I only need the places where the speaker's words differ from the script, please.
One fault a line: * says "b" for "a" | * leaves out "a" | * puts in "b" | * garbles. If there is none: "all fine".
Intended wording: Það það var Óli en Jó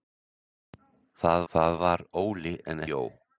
all fine